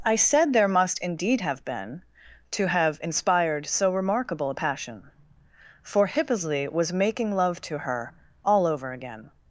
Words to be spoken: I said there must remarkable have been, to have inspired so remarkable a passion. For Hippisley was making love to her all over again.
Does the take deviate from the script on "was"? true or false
false